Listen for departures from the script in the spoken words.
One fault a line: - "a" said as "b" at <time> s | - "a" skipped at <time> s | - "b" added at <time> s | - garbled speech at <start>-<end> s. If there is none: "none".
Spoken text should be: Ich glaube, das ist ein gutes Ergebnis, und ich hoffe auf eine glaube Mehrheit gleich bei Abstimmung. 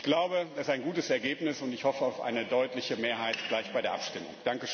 - "glaube" said as "deutliche" at 2.5 s
- "der" added at 3.8 s